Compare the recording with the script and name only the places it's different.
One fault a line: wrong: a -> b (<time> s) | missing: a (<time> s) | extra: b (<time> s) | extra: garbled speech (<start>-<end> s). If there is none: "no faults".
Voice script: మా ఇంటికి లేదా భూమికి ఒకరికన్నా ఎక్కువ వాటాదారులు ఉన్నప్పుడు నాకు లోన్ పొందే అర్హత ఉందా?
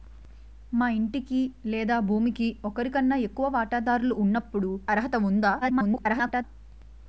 missing: నాకు లోన్ పొందే (4.7 s)
extra: garbled speech (5.6-6.4 s)